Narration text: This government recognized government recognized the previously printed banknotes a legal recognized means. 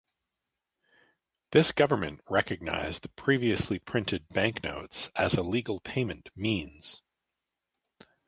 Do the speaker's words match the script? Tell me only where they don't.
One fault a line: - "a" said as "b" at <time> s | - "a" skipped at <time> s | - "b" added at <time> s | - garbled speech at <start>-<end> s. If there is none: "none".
- "government recognized" skipped at 3.0 s
- "as" added at 5.2 s
- "recognized" said as "payment" at 5.8 s